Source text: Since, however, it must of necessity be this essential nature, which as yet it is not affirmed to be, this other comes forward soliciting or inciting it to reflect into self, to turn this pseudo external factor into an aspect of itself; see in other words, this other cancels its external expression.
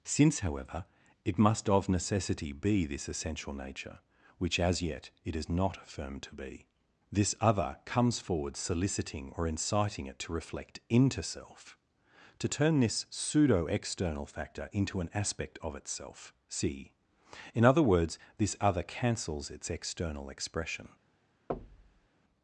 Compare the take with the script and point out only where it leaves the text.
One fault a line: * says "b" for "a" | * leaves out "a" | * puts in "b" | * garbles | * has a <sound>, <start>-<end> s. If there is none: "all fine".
* has a thud, 21.5-22.1 s